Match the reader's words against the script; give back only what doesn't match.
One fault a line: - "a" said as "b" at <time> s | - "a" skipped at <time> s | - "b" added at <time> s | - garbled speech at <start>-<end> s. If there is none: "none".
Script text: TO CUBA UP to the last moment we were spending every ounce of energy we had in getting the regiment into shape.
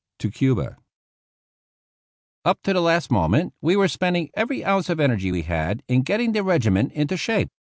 none